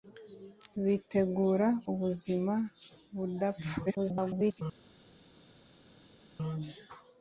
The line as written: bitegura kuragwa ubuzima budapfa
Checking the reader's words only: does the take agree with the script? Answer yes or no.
no